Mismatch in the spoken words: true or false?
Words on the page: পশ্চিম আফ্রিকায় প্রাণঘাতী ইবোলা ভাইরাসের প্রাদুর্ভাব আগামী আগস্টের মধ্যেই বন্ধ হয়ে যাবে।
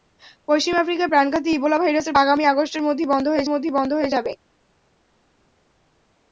true